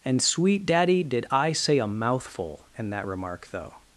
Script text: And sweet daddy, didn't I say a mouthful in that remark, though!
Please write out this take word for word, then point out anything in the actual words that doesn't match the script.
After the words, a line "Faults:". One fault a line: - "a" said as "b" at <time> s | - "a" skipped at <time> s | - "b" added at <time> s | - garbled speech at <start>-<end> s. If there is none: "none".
And sweet daddy, did I say a mouthful in that remark, though!
Faults:
- "didn't" said as "did" at 1.0 s